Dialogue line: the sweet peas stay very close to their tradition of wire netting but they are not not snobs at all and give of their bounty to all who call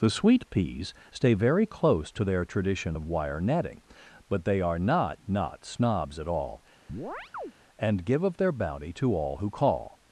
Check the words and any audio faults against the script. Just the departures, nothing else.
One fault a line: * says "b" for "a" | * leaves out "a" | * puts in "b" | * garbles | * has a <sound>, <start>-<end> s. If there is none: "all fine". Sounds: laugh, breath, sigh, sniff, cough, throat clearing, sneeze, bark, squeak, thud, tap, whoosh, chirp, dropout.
* has a chirp, 6.9-7.5 s